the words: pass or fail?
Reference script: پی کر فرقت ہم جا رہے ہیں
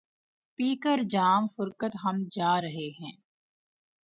fail